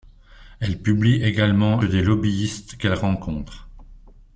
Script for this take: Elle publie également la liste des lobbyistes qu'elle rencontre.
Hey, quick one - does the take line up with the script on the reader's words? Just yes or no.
no